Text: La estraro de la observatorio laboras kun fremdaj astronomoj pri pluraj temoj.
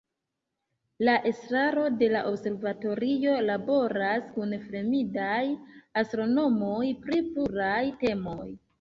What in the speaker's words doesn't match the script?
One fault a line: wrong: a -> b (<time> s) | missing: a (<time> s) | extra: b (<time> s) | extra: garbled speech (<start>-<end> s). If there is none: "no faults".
no faults